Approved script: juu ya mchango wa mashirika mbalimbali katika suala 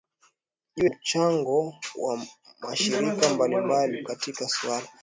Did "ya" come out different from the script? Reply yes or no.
yes